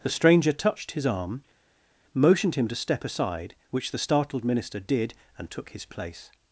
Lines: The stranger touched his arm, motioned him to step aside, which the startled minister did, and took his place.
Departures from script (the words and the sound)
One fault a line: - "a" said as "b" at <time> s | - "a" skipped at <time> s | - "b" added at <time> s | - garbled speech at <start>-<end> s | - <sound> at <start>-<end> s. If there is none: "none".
none